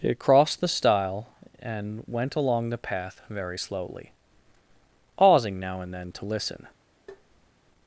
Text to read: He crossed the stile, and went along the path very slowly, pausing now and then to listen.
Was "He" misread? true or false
true